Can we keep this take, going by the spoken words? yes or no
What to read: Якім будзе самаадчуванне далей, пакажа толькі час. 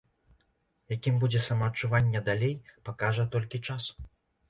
yes